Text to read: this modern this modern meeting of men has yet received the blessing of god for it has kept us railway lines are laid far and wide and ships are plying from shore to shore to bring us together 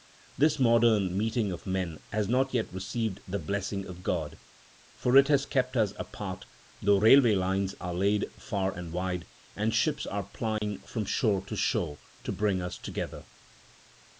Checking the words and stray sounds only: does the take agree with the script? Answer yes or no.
no